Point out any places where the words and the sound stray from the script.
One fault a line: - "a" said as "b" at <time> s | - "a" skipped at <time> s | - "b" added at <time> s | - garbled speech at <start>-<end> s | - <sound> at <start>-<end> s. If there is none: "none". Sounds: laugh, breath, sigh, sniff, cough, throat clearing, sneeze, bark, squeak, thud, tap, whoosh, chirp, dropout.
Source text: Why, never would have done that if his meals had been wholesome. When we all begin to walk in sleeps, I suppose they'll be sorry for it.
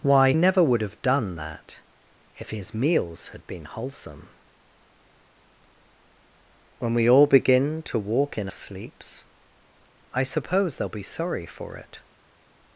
none